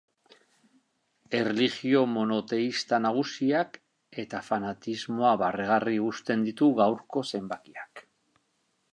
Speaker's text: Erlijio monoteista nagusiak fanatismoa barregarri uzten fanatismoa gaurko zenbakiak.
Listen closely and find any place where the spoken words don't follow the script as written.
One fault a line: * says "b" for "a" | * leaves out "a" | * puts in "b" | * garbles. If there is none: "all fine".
* puts in "eta"
* says "ditu" for "fanatismoa"